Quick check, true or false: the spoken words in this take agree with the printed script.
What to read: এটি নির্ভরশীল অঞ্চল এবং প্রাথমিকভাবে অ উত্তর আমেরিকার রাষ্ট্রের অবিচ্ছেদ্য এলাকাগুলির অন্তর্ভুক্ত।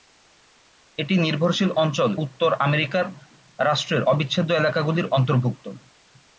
false